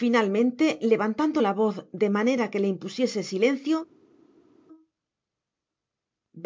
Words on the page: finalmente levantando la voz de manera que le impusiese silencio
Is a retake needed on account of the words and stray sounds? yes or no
no